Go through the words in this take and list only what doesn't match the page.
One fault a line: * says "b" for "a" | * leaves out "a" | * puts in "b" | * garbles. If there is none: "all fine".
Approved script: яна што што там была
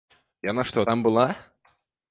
* leaves out "што"